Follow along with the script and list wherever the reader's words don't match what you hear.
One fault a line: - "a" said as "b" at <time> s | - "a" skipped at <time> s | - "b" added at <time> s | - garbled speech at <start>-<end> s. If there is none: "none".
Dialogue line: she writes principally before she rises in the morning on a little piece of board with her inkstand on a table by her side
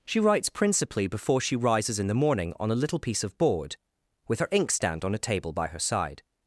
none